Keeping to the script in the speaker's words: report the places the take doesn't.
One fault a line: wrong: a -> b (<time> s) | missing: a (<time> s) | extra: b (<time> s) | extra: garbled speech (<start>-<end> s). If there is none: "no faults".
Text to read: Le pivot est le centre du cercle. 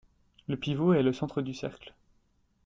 no faults